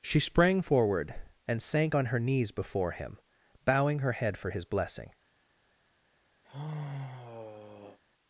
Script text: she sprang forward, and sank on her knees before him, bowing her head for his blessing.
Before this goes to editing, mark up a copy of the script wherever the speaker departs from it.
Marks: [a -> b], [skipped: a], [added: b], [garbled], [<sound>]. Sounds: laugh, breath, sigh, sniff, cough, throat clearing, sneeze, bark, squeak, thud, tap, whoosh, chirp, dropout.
she sprang forward, and sank on her knees before him, bowing her head for his blessing. [sigh]